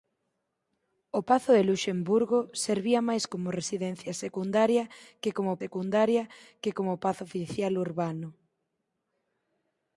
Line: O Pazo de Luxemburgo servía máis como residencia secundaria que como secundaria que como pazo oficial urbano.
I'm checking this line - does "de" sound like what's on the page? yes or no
yes